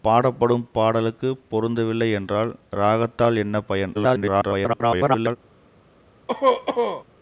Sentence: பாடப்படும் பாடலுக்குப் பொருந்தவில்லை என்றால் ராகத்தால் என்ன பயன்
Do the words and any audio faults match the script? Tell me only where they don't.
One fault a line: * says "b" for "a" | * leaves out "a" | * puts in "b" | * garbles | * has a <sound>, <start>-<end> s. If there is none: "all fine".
* garbles
* has a cough, 6.3-7.0 s